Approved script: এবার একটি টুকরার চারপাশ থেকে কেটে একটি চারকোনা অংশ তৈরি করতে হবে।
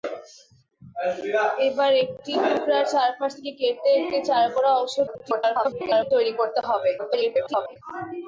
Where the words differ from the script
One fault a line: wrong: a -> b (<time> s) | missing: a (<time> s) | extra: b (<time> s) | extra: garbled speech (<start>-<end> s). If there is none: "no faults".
extra: garbled speech (5.1-6.1 s)
extra: garbled speech (7.0-7.8 s)